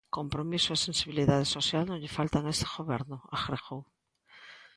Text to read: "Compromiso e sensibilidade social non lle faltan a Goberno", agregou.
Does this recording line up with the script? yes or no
no